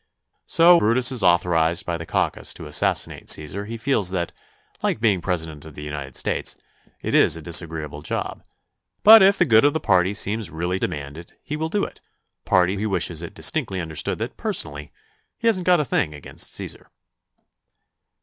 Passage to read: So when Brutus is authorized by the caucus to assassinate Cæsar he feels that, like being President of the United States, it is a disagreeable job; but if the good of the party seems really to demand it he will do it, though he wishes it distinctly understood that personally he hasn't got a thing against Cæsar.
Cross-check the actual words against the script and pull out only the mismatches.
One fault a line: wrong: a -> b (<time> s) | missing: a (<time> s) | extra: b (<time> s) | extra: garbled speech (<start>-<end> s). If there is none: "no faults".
missing: when (0.8 s)
missing: to (10.8 s)
wrong: though -> party (12.4 s)